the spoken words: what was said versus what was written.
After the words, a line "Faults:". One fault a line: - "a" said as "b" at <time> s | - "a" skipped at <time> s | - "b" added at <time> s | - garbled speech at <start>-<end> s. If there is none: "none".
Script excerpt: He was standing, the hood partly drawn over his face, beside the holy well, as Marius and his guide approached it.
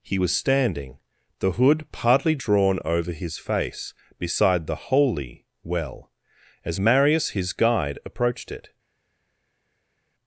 He was standing, the hood partly drawn over his face, beside the holy well, as Marius his guide approached it.
Faults:
- "and" skipped at 7.3 s